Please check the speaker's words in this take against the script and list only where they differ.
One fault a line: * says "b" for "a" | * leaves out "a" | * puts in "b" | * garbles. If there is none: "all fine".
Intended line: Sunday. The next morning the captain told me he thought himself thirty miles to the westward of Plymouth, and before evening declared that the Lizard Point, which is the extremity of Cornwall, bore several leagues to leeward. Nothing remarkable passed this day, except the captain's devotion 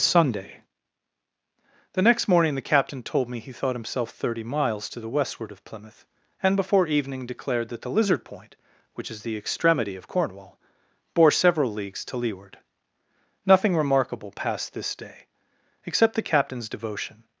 all fine